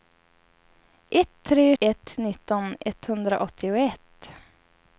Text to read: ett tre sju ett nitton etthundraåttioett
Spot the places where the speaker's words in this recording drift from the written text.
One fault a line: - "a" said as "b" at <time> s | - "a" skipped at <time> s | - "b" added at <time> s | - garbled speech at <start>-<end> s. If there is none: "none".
- "sju" skipped at 1.8 s